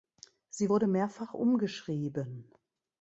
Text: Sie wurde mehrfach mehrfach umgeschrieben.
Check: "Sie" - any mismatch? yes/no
no